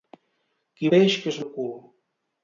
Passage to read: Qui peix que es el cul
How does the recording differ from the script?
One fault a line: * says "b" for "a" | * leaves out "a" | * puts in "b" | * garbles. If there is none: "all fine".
all fine